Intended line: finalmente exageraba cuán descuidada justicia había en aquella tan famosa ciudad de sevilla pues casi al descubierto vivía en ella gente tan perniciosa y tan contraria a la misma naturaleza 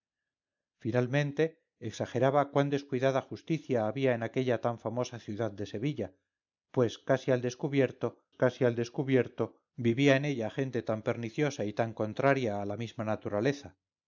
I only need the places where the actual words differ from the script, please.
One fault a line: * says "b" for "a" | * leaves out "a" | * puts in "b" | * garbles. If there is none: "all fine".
* puts in "casi al descubierto"